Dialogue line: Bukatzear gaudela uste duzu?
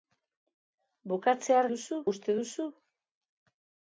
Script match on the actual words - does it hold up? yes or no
no